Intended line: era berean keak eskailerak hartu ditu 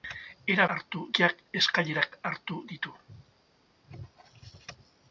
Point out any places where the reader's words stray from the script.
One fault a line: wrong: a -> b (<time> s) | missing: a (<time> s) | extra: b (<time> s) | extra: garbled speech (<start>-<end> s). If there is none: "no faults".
wrong: berean -> hartu (0.8 s)